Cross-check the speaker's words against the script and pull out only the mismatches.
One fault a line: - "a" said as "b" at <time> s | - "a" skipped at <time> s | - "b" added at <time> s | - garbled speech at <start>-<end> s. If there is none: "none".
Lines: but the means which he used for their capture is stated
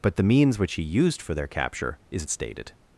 none